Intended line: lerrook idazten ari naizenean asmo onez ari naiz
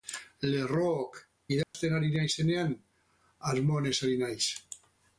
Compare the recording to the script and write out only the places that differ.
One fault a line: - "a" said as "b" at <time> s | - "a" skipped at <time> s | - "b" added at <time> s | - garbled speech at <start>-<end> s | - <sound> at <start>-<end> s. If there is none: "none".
- dropout at 1.6-1.7 s